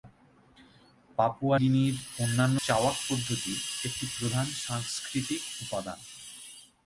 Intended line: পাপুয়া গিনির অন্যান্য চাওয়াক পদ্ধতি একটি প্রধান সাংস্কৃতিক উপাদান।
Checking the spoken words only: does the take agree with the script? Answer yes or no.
yes